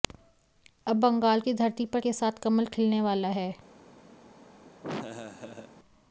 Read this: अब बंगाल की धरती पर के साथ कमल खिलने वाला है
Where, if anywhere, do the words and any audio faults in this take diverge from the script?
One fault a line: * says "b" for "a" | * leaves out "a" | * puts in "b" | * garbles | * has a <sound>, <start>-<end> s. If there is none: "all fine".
* has a laugh, 4.8-5.7 s